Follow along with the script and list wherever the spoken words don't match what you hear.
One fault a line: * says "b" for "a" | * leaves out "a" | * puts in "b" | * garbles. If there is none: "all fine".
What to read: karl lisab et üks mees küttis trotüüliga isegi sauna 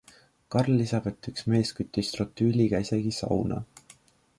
all fine